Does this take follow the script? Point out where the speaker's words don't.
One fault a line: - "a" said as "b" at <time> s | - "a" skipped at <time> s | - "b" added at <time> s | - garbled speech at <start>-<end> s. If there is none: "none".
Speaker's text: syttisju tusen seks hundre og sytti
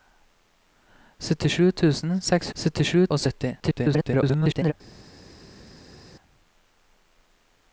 - "hundre" said as "syttisju" at 2.6 s
- garbled speech at 3.6-4.7 s